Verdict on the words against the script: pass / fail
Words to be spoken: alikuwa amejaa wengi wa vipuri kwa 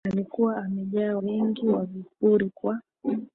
pass